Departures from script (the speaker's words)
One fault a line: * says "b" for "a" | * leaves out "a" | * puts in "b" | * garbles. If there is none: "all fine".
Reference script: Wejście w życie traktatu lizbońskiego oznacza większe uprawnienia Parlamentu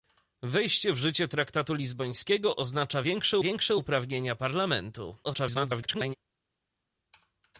* puts in "większe"
* garbles